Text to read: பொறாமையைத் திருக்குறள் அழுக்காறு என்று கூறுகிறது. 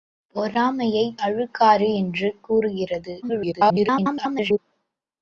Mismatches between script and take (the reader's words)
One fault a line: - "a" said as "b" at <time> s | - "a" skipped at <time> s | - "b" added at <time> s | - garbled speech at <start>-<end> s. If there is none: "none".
- "திருக்குறள்" skipped at 1.2 s
- garbled speech at 3.2-4.6 s